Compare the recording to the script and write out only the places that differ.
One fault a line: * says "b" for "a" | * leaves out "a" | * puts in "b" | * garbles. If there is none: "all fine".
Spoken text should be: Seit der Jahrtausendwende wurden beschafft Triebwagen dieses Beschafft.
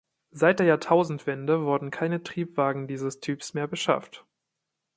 * says "keine" for "beschafft"
* puts in "Typs mehr"